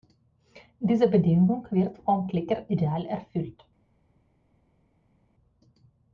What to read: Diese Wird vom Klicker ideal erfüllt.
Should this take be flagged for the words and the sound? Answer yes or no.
yes